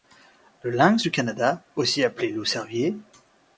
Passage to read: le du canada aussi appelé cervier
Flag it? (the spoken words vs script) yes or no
yes